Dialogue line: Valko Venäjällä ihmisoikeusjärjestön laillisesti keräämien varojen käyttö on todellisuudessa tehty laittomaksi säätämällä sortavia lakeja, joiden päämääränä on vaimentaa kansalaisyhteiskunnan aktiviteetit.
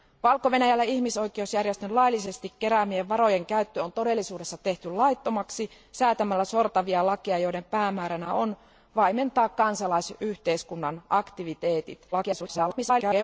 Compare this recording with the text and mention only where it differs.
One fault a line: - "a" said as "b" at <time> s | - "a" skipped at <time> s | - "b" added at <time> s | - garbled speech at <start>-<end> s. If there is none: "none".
- garbled speech at 12.1-13.2 s